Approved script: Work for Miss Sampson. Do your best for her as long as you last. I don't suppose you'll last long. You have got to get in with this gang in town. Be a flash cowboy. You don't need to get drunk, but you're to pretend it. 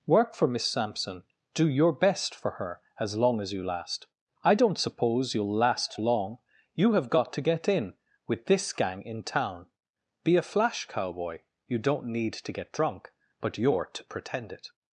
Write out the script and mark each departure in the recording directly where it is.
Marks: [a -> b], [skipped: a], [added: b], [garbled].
Work for Miss Sampson. Do your best for her as long as you last. I don't suppose you'll last long. You have got to get in with this gang in town. Be a flash cowboy. You don't need to get drunk, but you're to pretend it.